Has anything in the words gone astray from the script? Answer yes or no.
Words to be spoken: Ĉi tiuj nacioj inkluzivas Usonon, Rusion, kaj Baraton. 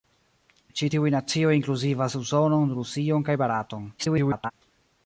yes